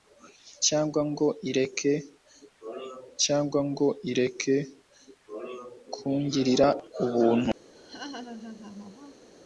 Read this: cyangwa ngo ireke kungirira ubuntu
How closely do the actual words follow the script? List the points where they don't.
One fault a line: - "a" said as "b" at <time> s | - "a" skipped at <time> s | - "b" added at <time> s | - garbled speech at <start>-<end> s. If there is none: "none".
- "cyangwa ngo ireke" added at 3.2 s